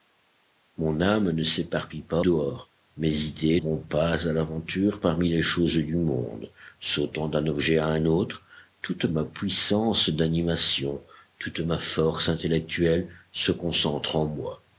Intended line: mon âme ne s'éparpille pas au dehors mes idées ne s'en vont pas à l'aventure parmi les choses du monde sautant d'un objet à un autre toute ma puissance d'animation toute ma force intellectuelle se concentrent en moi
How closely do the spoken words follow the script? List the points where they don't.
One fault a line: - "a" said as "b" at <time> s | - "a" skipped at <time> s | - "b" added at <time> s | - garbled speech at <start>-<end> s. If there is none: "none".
- "au" skipped at 2.2 s
- "ne s'en" skipped at 3.6 s